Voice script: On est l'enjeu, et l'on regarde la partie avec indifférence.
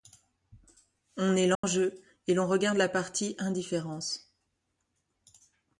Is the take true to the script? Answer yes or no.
no